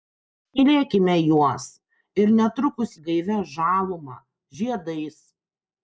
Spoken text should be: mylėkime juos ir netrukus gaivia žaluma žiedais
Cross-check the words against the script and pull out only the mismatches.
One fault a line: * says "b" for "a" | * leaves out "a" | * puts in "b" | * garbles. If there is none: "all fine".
all fine